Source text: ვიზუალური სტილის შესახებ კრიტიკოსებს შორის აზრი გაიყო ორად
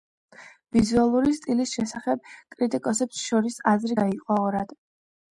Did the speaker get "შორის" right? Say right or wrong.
right